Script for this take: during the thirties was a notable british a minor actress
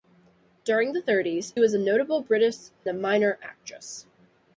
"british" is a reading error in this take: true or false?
false